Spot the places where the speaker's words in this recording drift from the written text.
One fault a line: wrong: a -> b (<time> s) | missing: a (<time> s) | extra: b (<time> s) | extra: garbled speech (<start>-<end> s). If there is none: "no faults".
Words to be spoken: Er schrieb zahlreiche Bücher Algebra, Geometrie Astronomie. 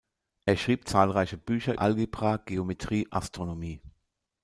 no faults